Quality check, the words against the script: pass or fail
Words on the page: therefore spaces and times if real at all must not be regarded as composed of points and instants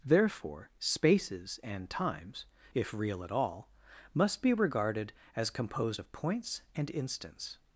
fail